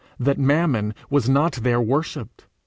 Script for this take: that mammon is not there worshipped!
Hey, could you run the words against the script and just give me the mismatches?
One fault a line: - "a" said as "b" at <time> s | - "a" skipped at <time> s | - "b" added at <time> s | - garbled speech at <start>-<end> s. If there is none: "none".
- "is" said as "was" at 1.1 s